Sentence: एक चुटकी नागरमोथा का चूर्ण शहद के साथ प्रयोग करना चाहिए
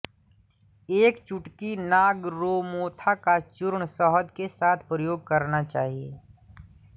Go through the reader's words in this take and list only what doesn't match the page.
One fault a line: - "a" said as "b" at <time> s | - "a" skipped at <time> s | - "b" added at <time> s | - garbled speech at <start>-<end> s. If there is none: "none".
none